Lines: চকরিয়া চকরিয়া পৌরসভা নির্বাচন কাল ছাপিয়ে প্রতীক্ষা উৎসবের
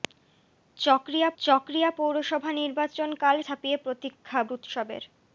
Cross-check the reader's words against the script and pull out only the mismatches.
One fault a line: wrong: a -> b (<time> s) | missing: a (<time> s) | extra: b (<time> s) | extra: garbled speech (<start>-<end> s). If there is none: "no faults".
no faults